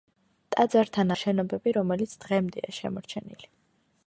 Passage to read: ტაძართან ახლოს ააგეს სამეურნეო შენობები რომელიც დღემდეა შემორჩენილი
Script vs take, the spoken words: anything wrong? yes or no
yes